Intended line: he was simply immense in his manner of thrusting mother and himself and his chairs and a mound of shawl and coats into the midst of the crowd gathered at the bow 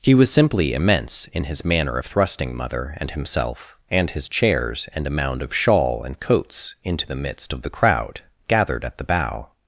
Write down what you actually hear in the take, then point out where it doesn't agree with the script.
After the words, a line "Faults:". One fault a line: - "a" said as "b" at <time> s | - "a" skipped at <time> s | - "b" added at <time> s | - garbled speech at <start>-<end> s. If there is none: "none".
he was simply immense in his manner of thrusting mother and himself and his chairs and a mound of shawl and coats into the midst of the crowd gathered at the bow
Faults:
none